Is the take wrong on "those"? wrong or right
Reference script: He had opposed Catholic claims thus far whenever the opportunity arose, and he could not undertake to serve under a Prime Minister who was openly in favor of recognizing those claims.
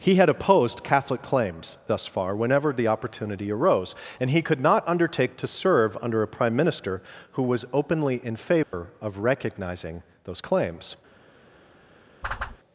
right